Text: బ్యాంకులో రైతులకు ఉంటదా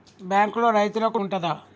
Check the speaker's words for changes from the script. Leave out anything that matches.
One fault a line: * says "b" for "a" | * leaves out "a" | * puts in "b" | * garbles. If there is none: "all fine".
all fine